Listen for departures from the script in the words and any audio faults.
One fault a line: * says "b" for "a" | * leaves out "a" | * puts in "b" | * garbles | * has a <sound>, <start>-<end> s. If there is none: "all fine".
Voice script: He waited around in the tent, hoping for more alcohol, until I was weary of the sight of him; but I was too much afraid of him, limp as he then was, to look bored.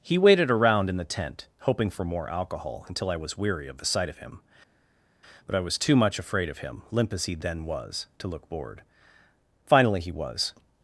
* puts in "Finally he was"